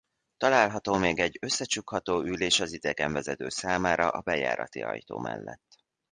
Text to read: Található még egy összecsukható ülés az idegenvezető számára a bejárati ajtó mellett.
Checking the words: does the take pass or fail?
pass